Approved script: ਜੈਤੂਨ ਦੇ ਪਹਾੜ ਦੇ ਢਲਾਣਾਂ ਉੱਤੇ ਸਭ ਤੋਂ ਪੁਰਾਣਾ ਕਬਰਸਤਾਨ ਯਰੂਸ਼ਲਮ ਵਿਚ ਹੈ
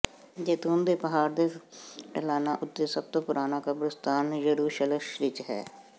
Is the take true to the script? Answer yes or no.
yes